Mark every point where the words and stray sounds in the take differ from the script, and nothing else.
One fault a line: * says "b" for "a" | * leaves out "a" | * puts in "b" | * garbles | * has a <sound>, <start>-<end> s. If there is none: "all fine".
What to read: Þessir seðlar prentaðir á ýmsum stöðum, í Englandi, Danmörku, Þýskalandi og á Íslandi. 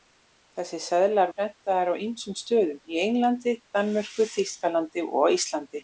all fine